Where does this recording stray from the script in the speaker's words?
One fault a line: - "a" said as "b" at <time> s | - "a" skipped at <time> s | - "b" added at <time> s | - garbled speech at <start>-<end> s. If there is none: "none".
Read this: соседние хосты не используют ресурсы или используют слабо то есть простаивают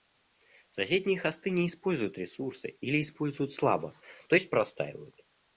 none